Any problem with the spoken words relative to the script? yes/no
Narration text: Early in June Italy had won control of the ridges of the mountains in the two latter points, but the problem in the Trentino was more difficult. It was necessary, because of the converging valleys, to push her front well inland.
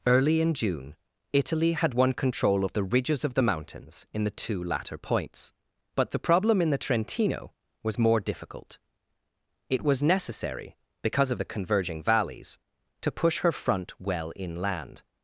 no